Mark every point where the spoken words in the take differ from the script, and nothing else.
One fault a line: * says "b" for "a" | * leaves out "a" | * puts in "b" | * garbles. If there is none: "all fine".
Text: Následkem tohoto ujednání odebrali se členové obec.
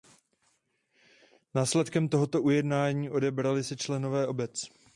all fine